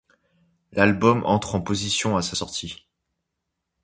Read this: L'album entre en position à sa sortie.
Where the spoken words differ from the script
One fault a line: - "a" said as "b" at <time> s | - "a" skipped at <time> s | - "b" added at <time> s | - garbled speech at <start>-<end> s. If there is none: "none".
none